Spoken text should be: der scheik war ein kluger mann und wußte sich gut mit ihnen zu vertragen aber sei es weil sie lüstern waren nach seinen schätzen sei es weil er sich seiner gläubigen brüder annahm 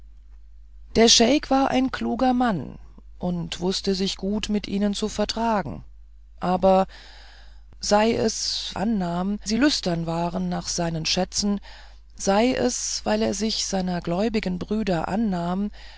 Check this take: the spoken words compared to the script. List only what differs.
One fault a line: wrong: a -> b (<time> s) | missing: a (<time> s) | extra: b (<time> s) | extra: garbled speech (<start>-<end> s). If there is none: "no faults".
wrong: weil -> annahm (8.8 s)